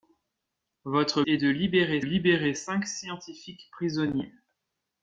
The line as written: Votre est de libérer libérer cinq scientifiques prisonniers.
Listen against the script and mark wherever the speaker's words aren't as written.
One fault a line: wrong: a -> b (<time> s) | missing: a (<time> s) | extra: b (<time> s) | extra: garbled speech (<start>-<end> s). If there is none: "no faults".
no faults